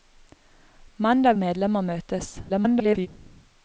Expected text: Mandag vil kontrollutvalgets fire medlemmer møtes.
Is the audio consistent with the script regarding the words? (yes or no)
no